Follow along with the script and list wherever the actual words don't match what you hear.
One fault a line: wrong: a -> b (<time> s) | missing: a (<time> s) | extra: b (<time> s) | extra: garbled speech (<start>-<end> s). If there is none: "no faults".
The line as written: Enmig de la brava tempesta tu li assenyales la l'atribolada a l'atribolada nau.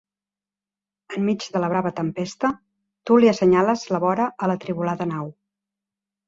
wrong: l'atribolada -> vora (4.1 s)